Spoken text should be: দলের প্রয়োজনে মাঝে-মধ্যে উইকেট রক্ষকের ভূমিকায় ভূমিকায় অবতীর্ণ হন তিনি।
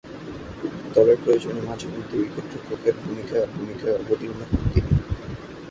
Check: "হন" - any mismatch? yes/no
no